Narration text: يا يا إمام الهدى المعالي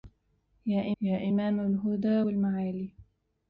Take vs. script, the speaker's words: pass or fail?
pass